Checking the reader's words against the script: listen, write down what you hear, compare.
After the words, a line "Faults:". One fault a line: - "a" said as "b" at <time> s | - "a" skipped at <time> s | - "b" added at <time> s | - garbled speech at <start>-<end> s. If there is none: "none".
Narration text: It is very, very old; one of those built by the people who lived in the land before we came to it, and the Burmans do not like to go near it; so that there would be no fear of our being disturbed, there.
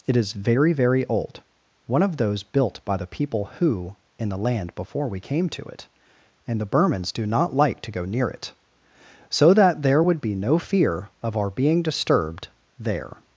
It is very, very old; one of those built by the people who in the land before we came to it, and the Burmans do not like to go near it; so that there would be no fear of our being disturbed, there.
Faults:
- "lived" skipped at 4.0 s